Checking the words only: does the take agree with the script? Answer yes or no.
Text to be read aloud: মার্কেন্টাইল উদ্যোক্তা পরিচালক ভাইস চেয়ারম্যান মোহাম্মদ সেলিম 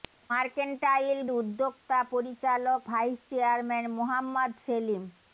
yes